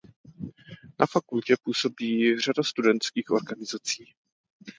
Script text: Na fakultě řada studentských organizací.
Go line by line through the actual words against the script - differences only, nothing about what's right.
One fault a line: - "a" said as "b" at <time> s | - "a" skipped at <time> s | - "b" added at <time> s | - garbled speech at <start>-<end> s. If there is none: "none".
- "působí" added at 1.6 s